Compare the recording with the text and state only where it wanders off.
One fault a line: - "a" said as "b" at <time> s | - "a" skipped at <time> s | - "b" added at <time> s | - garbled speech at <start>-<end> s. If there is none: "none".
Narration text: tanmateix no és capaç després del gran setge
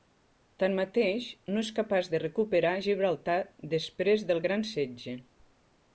- "de recuperar gibraltar" added at 2.1 s